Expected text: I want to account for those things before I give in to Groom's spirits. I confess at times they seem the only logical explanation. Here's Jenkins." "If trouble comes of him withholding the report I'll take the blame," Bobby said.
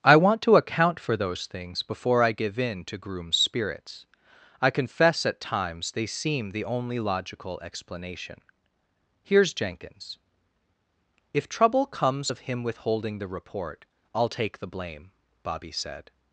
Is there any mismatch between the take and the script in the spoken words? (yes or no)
no